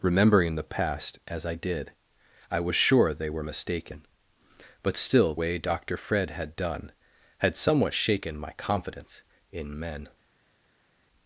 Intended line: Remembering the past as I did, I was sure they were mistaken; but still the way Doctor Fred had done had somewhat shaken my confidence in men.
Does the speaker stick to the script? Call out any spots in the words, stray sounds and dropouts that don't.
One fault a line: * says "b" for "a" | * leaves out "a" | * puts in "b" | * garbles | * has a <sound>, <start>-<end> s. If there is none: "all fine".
* leaves out "the"